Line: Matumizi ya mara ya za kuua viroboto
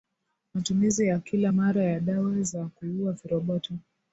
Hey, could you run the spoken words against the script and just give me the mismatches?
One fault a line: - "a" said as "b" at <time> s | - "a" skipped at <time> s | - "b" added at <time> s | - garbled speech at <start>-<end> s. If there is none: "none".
- "kila" added at 1.2 s
- "dawa" added at 2.0 s